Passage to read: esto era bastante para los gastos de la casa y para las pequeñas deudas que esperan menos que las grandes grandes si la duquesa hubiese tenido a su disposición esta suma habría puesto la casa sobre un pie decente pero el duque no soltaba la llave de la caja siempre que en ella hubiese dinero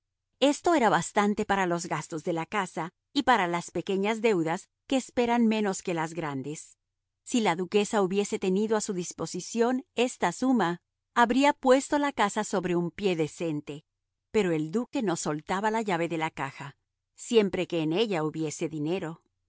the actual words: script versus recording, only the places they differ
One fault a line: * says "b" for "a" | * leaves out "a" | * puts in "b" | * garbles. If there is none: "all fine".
* leaves out "grandes"